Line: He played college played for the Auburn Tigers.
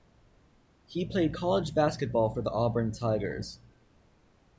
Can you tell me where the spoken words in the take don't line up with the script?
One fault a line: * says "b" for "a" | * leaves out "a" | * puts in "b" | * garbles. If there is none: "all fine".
* says "basketball" for "played"